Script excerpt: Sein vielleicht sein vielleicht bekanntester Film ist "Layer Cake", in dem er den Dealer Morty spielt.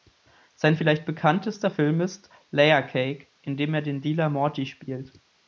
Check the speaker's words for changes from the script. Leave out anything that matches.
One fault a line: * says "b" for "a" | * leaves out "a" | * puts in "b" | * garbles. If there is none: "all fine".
* leaves out "sein vielleicht"